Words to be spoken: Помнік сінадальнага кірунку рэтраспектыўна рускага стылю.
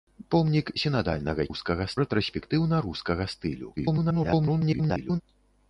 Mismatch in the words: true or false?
true